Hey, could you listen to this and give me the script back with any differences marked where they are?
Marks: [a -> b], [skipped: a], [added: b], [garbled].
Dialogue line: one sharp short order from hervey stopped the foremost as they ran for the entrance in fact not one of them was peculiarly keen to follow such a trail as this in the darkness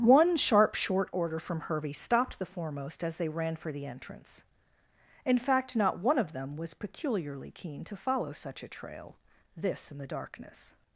one sharp short order from hervey stopped the foremost as they ran for the entrance in fact not one of them was peculiarly keen to follow such a trail [skipped: as] this in the darkness